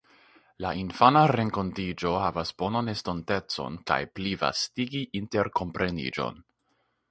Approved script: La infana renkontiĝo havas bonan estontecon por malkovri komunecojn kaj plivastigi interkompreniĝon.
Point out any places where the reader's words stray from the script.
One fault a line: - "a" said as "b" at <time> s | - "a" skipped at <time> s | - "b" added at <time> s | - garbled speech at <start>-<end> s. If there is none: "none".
- "por malkovri komunecojn" skipped at 3.8 s